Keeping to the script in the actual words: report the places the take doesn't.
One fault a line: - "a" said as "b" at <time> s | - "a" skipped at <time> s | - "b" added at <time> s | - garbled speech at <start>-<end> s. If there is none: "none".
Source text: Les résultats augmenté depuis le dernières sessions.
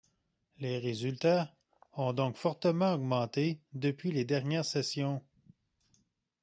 - "ont donc fortement" added at 1.9 s
- "le" said as "les" at 4.1 s